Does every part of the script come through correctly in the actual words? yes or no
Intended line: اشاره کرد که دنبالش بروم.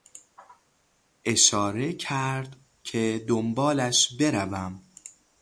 yes